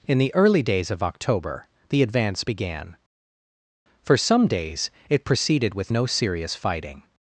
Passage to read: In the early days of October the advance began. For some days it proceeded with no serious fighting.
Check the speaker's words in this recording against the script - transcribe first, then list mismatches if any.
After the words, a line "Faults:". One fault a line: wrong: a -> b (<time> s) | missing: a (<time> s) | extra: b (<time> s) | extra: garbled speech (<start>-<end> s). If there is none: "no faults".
In the early days of October the advance began. For some days it proceeded with no serious fighting.
Faults:
no faults